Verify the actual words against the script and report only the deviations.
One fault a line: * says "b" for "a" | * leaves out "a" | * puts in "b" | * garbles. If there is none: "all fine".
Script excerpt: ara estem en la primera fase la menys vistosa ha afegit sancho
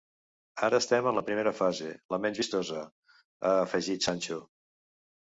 all fine